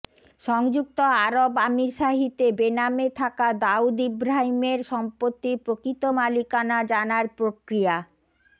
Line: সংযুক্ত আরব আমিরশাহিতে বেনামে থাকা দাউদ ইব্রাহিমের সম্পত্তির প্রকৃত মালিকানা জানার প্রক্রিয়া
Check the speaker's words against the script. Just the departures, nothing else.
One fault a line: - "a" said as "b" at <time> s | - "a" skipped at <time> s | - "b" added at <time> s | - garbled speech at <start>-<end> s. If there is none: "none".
none